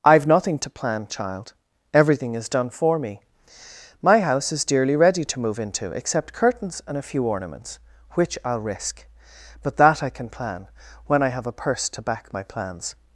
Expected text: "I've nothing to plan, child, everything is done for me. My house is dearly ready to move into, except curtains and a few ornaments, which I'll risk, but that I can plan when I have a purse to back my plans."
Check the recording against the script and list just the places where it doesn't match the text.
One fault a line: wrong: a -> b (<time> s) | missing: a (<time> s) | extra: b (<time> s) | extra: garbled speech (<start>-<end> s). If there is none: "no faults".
no faults